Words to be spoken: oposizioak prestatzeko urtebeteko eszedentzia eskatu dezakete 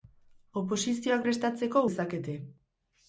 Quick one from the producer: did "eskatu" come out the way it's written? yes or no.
no